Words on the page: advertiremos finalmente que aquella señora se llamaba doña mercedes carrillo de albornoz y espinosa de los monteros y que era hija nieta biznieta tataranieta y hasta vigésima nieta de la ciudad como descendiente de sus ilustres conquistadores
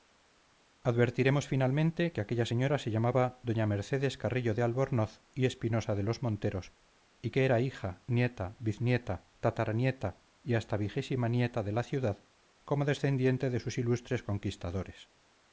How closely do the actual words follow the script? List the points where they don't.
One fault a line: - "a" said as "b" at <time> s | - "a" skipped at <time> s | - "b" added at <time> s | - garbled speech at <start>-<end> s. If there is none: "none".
none